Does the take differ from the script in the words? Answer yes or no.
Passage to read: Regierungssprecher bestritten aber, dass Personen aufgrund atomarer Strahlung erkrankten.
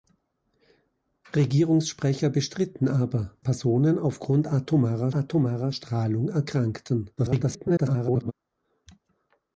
yes